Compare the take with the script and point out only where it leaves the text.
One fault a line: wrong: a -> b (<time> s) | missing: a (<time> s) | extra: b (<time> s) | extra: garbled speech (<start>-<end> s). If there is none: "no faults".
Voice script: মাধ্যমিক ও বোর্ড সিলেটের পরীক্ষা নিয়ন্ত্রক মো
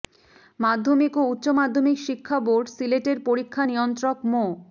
extra: উচ্চ মাধ্যমিক শিক্ষা (1.3 s)